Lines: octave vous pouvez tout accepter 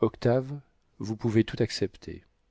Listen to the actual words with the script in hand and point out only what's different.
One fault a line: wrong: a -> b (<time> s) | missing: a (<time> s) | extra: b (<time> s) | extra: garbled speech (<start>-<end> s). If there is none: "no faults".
no faults